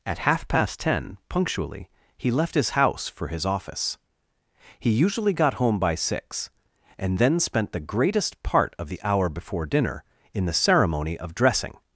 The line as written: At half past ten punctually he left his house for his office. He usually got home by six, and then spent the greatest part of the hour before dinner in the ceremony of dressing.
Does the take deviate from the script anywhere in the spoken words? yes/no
no